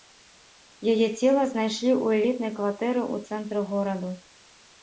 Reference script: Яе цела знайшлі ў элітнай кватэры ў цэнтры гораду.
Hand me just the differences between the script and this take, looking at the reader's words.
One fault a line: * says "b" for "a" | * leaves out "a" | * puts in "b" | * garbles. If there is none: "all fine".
all fine